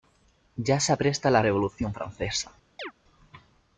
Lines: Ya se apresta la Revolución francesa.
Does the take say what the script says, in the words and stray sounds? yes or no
no